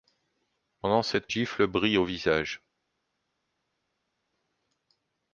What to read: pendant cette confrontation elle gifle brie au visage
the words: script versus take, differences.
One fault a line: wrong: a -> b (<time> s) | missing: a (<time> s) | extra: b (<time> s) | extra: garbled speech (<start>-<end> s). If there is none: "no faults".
missing: confrontation elle (1.3 s)